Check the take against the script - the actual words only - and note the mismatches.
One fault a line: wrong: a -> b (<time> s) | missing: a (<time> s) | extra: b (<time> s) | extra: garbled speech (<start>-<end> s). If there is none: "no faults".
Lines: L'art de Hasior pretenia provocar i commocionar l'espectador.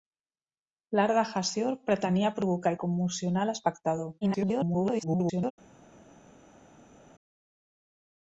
extra: garbled speech (4.2-5.5 s)